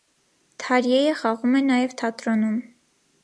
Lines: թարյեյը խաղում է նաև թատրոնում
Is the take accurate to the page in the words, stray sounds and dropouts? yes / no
yes